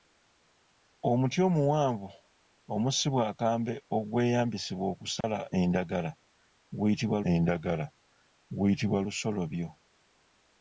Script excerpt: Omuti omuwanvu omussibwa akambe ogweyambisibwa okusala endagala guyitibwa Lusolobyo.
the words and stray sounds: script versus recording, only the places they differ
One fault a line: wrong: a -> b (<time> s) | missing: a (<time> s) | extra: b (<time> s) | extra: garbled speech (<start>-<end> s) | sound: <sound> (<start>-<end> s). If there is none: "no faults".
sound: dropout (5.2-5.2 s)
extra: endagala guyitibwa (7.3 s)